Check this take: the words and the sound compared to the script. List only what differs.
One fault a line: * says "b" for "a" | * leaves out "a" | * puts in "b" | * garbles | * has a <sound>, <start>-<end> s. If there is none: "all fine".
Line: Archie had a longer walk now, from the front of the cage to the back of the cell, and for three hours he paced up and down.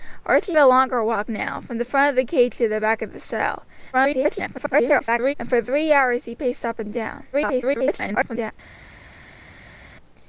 * leaves out "had"
* garbles
* garbles